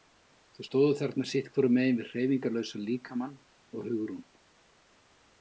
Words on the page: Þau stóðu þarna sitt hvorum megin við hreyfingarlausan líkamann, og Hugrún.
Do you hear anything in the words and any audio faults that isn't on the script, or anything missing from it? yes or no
no